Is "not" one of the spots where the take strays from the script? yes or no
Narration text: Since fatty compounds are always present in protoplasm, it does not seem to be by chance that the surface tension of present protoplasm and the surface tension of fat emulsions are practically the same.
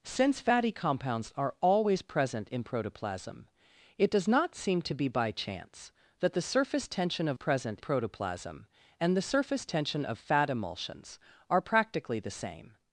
no